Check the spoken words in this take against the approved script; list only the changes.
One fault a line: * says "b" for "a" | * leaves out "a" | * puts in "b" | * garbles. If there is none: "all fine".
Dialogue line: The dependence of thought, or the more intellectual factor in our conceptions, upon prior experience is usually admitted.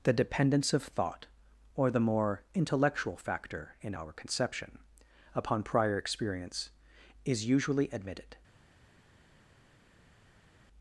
* says "conception" for "conceptions"